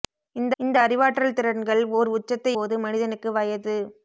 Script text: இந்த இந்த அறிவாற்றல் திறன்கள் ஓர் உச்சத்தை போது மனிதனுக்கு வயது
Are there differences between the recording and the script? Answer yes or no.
no